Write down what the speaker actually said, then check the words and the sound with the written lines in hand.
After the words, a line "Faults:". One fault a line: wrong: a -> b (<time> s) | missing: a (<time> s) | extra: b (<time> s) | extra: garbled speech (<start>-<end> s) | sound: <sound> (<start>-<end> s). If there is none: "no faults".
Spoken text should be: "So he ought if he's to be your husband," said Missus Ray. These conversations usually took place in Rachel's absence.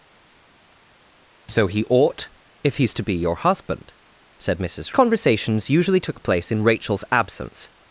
"So he ought if he's to be your husband," said Missus Conversations usually took place in Rachel's absence.
Faults:
missing: Ray These (4.9 s)